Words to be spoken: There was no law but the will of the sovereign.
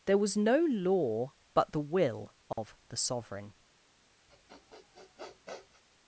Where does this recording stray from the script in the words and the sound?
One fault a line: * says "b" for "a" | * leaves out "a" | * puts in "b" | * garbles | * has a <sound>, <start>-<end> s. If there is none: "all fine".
* has a dropout, 2.5-2.6 s
* has a sniff, 4.3-5.8 s